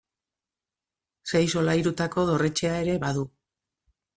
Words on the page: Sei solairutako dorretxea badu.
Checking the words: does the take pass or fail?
fail